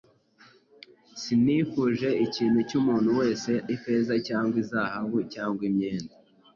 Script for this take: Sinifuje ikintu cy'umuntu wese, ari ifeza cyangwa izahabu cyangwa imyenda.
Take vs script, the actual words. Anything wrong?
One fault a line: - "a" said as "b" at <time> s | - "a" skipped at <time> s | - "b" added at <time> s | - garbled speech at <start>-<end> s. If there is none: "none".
- "ari" skipped at 3.5 s